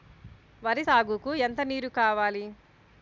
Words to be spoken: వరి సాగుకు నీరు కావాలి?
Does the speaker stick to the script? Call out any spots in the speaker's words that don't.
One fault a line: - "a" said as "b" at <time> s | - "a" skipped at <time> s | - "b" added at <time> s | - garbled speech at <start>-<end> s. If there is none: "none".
- "ఎంత" added at 1.5 s